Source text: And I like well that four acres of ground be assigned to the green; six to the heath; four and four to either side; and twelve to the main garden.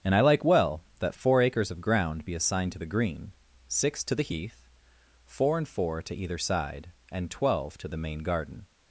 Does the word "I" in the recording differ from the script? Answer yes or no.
no